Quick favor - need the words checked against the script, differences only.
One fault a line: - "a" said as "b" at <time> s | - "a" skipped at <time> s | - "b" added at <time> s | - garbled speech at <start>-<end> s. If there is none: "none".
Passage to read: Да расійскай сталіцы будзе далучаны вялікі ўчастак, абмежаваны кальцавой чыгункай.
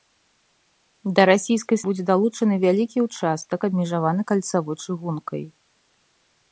- "сталіцы" skipped at 1.8 s